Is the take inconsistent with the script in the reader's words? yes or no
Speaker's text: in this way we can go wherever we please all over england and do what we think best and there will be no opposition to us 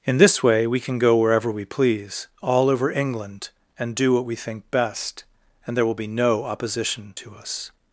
no